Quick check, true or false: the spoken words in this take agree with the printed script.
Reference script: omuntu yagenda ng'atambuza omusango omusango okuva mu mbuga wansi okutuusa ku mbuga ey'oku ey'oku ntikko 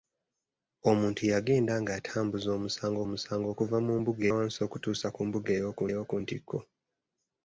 true